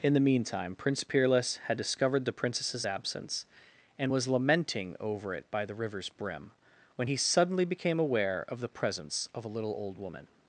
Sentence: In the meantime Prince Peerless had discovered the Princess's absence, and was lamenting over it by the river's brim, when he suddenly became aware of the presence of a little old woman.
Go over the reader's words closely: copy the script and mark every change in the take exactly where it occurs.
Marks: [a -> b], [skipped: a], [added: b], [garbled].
In the meantime Prince Peerless had discovered the Princess's absence, and was lamenting over it by the river's brim, when he suddenly became aware of the presence of a little old woman.